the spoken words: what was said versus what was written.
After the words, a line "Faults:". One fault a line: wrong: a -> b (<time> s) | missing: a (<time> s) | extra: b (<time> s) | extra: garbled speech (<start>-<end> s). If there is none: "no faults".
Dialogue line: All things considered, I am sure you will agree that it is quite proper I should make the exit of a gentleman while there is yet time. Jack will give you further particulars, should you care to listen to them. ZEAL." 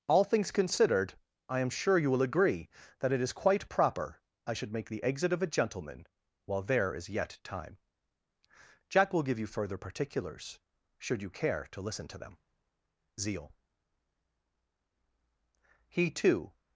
All things considered, I am sure you will agree that it is quite proper I should make the exit of a gentleman while there is yet time. Jack will give you further particulars, should you care to listen to them. ZEAL." He too
Faults:
extra: He too (15.9 s)